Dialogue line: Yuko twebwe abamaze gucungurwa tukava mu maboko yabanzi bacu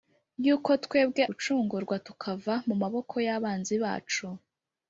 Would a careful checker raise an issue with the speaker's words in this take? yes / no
yes